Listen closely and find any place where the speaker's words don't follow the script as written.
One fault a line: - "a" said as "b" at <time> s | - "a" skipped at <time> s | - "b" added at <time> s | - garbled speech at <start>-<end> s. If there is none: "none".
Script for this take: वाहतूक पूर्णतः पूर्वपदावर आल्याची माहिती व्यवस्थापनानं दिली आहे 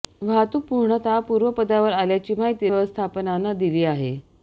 none